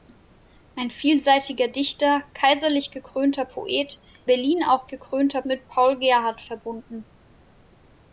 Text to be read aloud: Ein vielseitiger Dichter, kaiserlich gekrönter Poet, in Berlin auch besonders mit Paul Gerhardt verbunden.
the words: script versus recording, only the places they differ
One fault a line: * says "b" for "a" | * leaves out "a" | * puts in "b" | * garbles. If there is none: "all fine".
* leaves out "in"
* says "gekrönter" for "besonders"